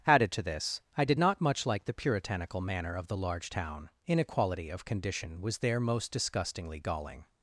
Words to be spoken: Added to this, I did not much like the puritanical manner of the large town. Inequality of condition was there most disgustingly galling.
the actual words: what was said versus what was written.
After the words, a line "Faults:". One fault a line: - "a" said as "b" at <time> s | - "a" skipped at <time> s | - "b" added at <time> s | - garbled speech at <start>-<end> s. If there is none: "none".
Added to this, I did not much like the puritanical manner of the large town. Inequality of condition was there most disgustingly galling.
Faults:
none